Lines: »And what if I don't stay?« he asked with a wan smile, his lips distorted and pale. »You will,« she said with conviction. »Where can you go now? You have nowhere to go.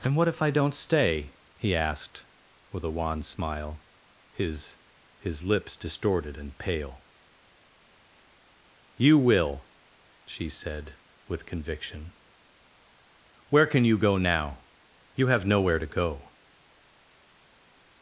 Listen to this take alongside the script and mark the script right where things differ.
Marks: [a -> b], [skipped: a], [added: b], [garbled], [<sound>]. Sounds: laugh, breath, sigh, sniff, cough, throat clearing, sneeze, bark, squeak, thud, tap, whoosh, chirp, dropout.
»And what if I don't stay?« he asked with a wan smile, his [added: his] lips distorted and pale. »You will,« she said with conviction. »Where can you go now? You have nowhere to go.